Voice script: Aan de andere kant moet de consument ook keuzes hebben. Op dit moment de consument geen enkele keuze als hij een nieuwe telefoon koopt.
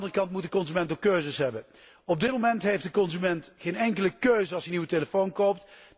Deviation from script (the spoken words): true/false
true